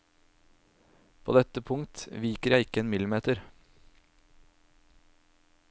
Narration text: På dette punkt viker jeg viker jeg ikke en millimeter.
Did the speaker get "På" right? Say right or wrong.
right